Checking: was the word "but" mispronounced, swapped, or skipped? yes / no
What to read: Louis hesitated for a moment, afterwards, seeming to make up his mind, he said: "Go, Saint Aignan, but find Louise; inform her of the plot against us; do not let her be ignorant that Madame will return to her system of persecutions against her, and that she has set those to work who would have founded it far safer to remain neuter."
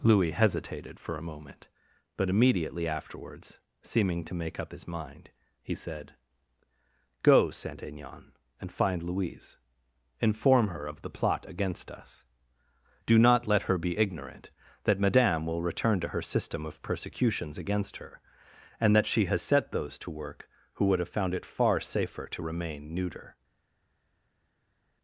yes